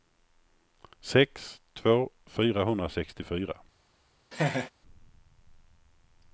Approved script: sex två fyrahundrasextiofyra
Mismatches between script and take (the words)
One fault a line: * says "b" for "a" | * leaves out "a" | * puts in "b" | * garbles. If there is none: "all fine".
all fine